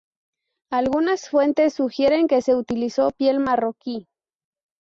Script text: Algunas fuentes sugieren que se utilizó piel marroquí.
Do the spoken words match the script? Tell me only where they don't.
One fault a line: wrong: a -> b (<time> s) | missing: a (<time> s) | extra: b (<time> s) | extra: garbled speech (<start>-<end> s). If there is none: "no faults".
no faults